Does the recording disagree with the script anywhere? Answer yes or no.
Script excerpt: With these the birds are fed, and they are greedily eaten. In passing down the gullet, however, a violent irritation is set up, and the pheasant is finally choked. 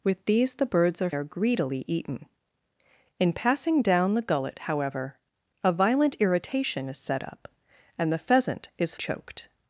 yes